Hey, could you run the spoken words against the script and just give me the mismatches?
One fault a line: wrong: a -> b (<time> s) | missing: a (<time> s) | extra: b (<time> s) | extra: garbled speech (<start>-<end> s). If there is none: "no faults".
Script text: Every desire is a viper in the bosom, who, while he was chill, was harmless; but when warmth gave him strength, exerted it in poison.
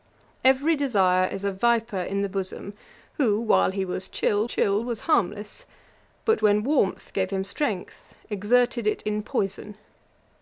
extra: chill (4.4 s)